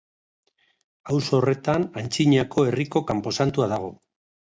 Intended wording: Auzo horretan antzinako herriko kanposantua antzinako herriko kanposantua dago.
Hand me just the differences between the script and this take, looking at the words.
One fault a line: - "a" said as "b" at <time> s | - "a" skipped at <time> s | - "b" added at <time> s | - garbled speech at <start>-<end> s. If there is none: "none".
- "antzinako herriko kanposantua" skipped at 3.7 s